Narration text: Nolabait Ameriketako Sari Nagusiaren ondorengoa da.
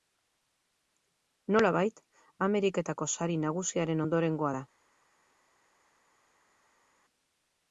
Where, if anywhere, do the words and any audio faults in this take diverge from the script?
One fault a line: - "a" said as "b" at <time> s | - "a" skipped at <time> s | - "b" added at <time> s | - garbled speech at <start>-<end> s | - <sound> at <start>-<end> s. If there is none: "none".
none